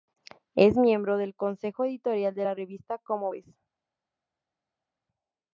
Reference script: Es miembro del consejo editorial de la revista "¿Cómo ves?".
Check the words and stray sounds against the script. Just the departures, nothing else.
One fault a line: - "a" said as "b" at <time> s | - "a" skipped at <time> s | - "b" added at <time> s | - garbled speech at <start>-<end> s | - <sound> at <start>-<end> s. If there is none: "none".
none